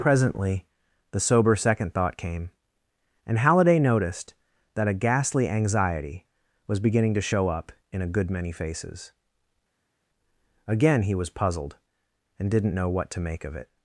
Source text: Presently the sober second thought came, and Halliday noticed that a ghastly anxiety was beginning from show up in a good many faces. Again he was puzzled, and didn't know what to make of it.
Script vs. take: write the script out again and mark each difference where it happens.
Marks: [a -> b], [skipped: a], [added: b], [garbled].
Presently the sober second thought came, and Halliday noticed that a ghastly anxiety was beginning [from -> to] show up in a good many faces. Again he was puzzled, and didn't know what to make of it.